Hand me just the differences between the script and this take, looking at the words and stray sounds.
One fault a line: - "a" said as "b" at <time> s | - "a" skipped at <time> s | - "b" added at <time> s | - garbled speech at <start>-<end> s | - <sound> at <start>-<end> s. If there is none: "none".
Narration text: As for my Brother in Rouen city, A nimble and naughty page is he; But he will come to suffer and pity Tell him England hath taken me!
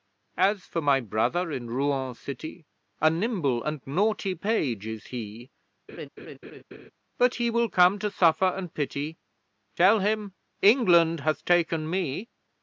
- laugh at 5.9-6.9 s